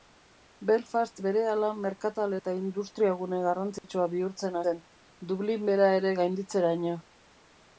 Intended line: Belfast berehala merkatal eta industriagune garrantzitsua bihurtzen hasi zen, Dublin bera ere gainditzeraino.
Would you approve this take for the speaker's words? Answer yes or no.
no